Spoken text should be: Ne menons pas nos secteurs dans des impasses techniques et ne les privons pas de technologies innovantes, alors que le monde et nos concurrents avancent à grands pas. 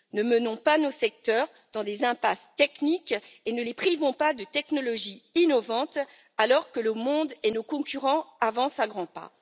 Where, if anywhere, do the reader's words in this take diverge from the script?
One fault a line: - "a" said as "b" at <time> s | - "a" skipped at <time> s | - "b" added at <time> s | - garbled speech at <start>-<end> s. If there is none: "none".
none